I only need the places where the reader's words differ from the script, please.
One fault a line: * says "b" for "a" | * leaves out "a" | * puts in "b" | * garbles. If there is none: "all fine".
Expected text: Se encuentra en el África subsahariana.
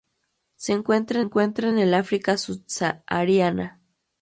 * puts in "encuentra"